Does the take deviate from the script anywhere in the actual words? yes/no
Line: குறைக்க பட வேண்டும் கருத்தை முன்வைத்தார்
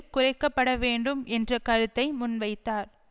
yes